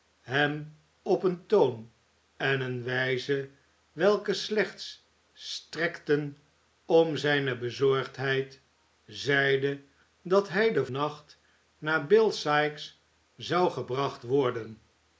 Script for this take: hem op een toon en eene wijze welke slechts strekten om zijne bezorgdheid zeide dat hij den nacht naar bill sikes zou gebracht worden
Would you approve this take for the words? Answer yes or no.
yes